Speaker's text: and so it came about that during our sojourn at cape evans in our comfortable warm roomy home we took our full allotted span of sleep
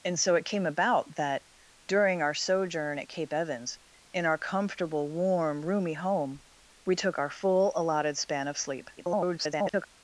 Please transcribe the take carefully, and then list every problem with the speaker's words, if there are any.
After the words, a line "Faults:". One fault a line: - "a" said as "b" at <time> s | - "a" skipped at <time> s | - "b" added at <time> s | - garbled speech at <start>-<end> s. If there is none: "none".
and so it came about that during our sojourn at cape evans in our comfortable warm roomy home we took our full allotted span of sleep [garbled]
Faults:
- garbled speech at 9.0-9.9 s